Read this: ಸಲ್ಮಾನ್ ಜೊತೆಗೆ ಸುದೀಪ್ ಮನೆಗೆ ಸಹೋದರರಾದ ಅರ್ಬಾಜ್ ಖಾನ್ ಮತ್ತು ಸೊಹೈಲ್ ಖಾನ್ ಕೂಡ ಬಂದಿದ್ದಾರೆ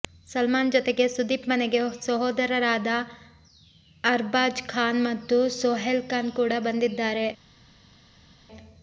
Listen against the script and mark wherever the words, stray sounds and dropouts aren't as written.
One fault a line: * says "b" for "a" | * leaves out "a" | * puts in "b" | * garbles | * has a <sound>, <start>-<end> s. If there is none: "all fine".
all fine